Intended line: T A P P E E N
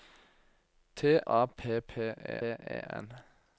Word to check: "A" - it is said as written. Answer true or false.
true